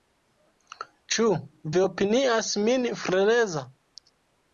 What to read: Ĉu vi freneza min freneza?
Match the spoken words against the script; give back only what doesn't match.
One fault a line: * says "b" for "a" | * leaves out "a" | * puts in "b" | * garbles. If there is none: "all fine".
* says "opinias" for "freneza"